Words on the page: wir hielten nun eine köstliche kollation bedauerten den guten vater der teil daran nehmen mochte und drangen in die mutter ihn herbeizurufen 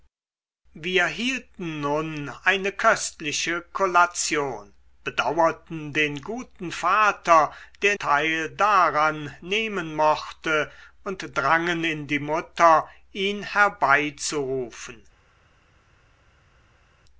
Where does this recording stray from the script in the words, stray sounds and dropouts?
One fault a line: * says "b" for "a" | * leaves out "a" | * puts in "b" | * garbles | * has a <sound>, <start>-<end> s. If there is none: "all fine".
all fine